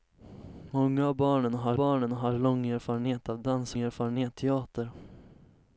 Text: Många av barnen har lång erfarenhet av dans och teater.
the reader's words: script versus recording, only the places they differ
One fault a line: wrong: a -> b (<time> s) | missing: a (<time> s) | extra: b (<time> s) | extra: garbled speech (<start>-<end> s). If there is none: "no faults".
extra: barnen har (1.7 s)
wrong: och -> erfarenhet (3.8 s)